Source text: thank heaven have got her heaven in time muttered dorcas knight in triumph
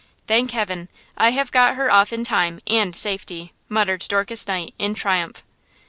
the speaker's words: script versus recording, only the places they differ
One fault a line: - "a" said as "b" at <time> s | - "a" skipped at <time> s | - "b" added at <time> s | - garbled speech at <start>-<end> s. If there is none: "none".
- "i" added at 1.1 s
- "heaven" said as "off" at 1.9 s
- "and safety" added at 2.7 s